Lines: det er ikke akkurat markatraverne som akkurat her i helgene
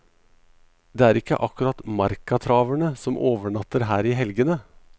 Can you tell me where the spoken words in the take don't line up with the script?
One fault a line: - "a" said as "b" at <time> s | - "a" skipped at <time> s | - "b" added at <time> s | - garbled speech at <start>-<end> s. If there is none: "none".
- "akkurat" said as "overnatter" at 3.2 s